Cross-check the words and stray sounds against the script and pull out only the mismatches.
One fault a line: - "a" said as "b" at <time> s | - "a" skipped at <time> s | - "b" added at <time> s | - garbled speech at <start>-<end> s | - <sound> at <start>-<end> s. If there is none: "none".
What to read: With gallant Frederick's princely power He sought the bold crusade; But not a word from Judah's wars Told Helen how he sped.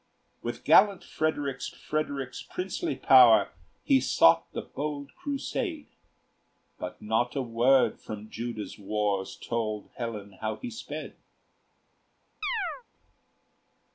- "Frederick's" added at 1.7 s
- chirp at 12.4-12.8 s